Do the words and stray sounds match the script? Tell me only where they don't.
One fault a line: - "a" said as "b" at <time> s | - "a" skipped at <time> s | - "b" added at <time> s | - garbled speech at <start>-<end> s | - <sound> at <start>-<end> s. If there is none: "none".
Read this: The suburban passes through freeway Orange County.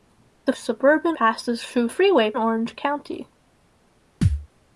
- thud at 4.2-4.5 s